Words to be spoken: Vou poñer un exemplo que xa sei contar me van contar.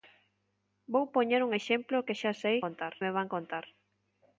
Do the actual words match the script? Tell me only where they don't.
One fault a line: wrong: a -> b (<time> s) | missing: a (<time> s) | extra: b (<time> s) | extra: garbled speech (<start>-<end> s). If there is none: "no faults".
no faults